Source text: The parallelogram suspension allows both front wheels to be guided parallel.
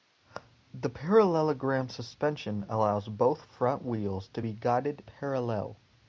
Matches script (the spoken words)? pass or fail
pass